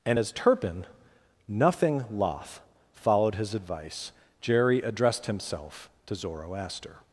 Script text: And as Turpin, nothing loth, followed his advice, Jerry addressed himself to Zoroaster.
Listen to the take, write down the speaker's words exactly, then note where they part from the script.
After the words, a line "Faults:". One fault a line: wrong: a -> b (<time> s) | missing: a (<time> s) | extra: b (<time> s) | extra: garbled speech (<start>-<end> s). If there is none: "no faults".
And as Turpin, nothing loth, followed his advice, Jerry addressed himself to Zoroaster.
Faults:
no faults